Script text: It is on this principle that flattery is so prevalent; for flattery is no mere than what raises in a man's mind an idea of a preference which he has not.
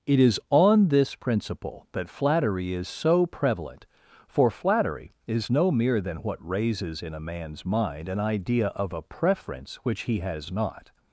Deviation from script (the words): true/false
false